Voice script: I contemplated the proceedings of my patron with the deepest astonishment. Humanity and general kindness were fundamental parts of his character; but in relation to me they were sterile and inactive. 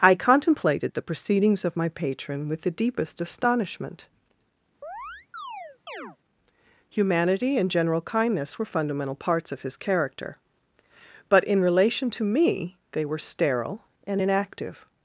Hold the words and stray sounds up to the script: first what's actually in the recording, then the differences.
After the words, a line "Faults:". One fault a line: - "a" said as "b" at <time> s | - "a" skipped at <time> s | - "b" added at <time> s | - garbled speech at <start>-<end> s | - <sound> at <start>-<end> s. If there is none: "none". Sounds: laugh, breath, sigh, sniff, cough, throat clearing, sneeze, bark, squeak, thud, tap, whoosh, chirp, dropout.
I contemplated the proceedings of my patron with the deepest astonishment. Humanity and general kindness were fundamental parts of his character; but in relation to me they were sterile and inactive.
Faults:
- chirp at 4.8-6.2 s